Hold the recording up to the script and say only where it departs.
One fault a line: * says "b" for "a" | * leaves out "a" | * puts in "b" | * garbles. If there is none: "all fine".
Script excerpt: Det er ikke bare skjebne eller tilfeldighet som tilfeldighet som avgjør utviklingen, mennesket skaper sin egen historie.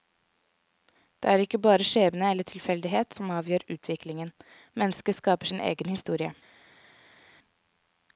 * leaves out "tilfeldighet som"